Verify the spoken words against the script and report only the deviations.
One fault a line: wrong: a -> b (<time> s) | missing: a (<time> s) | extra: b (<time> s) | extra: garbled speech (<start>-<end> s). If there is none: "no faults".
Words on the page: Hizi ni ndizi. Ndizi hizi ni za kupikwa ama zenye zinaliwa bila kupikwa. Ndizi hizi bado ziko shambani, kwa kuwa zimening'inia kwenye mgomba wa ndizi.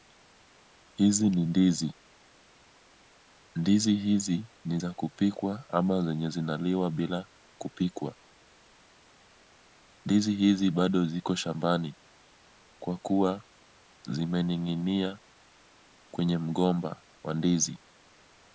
no faults